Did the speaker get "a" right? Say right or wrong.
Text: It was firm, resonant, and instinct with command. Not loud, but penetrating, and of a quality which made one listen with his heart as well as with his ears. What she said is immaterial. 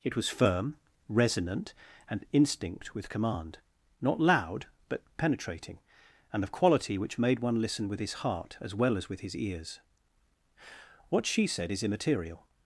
wrong